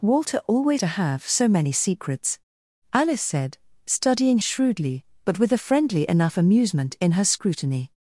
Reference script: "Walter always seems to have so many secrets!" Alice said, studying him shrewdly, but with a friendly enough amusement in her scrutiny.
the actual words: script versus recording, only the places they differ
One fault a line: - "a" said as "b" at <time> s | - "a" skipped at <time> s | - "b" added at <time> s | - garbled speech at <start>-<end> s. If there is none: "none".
- "seems" skipped at 0.8 s
- "him" skipped at 4.4 s